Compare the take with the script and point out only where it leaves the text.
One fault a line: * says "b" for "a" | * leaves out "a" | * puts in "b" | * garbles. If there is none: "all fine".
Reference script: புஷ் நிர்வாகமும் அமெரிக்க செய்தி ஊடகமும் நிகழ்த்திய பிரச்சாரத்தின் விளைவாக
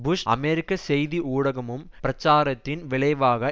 * leaves out "நிர்வாகமும்"
* leaves out "நிகழ்த்திய"